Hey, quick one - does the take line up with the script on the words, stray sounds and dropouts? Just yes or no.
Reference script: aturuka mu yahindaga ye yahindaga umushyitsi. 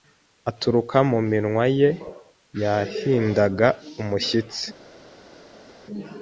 no